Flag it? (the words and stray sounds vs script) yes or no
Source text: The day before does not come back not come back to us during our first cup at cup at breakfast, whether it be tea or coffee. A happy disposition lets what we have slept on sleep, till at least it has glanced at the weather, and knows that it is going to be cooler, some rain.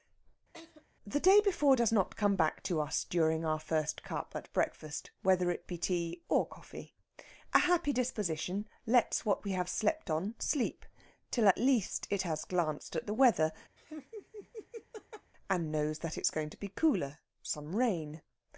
yes